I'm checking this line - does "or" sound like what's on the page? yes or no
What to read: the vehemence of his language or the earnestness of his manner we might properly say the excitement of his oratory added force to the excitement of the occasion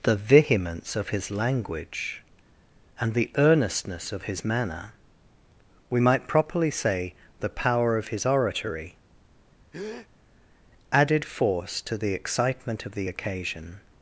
no